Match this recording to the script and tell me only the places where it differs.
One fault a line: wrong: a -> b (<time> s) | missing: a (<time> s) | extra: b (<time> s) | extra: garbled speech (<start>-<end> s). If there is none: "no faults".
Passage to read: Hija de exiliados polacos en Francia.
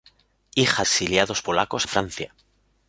missing: de (0.8 s)
missing: en (1.9 s)